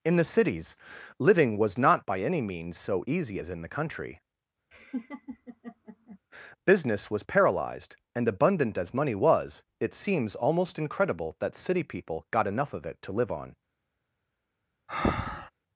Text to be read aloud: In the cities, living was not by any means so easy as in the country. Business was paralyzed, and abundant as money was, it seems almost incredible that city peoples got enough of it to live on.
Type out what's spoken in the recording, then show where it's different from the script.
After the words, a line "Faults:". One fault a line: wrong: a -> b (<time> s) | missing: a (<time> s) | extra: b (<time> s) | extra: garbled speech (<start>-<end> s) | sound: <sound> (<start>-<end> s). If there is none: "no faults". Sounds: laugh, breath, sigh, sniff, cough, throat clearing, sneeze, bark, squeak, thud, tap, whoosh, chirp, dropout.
In the cities, living was not by any means so easy as in the country. Business was paralyzed, and abundant as money was, it seems almost incredible that city people got enough of it to live on.
Faults:
sound: laugh (4.7-6.2 s)
wrong: peoples -> people (11.8 s)
sound: breath (14.9-15.5 s)